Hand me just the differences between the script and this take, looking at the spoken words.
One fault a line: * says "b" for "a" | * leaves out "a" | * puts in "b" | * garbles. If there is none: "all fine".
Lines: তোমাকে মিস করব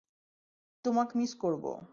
all fine